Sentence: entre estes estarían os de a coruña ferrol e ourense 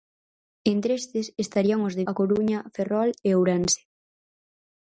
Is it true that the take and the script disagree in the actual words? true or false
false